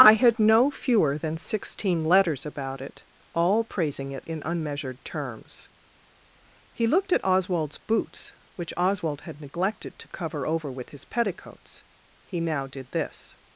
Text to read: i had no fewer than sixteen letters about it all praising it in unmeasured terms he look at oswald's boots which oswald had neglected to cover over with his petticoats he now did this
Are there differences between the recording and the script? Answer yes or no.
yes